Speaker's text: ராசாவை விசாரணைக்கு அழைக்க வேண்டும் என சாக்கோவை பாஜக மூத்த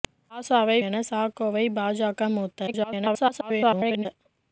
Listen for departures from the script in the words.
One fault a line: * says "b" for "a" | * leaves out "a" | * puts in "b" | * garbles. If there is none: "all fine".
* leaves out "விசாரணைக்கு அழைக்க வேண்டும்"
* garbles